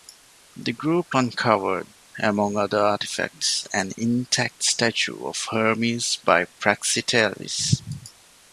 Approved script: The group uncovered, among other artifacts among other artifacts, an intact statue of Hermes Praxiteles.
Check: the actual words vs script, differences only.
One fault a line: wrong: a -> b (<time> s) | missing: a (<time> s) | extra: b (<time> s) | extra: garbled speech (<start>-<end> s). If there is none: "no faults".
missing: among other artifacts (3.7 s)
extra: by (6.2 s)